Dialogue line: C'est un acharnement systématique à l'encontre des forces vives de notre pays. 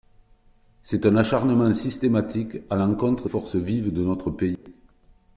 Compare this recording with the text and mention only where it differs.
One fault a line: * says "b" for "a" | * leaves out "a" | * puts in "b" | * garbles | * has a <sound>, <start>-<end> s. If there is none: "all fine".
* leaves out "des"
* has a dropout, 4.6-4.7 s